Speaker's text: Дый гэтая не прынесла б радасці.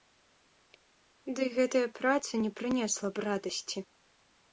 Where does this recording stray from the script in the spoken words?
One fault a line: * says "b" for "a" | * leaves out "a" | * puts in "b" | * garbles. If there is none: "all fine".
* puts in "праца"